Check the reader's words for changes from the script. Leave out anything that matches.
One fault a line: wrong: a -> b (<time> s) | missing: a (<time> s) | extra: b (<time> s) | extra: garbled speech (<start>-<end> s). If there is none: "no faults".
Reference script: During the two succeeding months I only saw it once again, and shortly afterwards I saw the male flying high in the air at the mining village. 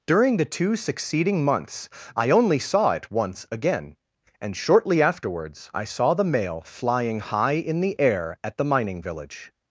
no faults